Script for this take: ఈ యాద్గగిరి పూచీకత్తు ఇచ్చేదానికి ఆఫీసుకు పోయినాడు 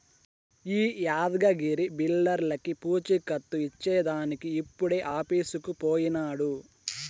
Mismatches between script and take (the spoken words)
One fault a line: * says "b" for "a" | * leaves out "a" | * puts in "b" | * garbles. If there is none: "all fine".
* puts in "బిల్డర్లకీ"
* puts in "ఇప్పుడే"